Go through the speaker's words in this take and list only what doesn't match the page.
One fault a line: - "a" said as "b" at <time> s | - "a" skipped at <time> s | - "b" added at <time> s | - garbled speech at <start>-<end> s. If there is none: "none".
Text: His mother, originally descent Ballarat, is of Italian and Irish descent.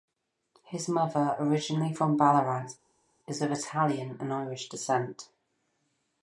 - "descent" said as "from" at 1.9 s